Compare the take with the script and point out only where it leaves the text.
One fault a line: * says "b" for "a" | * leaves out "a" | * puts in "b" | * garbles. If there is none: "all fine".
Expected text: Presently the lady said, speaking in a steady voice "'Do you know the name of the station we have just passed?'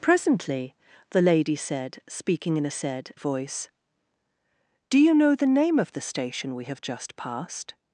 * says "said" for "steady"